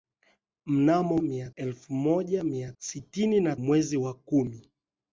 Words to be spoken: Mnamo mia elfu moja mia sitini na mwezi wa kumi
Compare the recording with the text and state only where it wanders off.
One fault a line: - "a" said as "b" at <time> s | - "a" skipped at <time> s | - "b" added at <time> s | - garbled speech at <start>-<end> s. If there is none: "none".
none